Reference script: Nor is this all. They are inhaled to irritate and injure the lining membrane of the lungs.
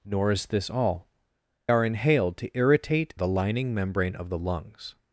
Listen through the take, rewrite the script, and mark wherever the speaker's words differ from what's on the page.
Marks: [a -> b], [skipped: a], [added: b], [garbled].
Nor is this all. [skipped: They] are inhaled to irritate [skipped: and injure] the lining membrane of the lungs.